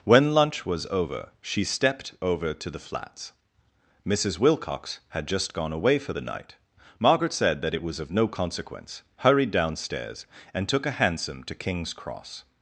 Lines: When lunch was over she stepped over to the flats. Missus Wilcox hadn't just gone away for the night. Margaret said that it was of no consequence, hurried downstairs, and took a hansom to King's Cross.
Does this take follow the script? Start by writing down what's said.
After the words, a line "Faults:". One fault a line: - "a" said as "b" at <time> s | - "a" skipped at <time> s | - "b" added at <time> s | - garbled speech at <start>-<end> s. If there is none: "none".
When lunch was over she stepped over to the flats. Missus Wilcox had just gone away for the night. Margaret said that it was of no consequence, hurried downstairs, and took a hansom to King's Cross.
Faults:
- "hadn't" said as "had" at 5.1 s